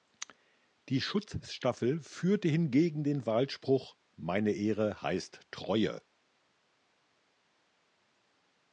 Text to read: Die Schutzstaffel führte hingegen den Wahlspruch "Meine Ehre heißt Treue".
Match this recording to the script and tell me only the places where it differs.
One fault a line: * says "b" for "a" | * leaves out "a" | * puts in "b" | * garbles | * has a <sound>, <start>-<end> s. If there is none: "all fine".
all fine